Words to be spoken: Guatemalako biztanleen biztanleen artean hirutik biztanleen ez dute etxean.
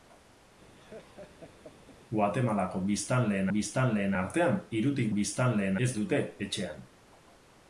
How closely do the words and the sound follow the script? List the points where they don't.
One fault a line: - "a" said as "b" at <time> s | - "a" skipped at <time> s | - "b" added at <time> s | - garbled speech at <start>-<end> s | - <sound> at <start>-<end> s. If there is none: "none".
- laugh at 0.8-2.0 s